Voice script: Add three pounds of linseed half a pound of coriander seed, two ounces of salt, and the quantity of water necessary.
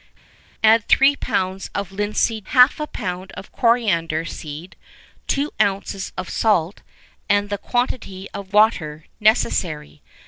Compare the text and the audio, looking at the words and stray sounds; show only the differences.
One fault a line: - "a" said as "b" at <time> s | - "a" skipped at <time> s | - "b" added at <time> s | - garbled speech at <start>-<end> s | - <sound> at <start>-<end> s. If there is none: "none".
none